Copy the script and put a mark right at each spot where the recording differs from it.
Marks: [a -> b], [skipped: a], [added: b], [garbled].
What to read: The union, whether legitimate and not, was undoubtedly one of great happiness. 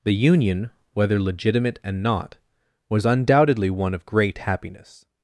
The union, whether legitimate and not, was undoubtedly one of great happiness.